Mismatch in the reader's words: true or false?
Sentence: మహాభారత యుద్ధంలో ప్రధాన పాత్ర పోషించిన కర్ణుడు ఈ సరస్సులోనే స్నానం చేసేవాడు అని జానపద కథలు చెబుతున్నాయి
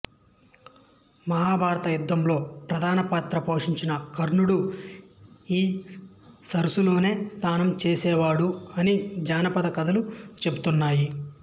false